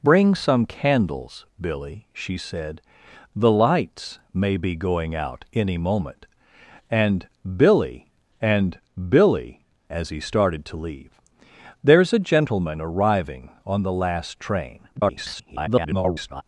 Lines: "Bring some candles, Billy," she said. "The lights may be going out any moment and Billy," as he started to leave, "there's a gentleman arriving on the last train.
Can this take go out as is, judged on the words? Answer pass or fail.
fail